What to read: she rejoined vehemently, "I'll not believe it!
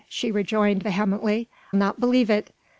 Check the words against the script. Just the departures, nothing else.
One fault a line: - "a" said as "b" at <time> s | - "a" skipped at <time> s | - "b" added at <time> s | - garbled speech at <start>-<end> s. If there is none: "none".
- "I'll" skipped at 1.5 s